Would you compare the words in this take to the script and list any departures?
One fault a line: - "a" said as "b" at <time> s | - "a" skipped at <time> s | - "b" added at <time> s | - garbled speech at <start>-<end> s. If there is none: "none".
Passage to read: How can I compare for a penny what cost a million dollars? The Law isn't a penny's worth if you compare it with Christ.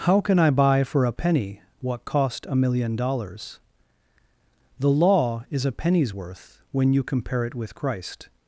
- "compare" said as "buy" at 0.5 s
- "isn't" said as "is" at 5.5 s
- "if" said as "when" at 6.7 s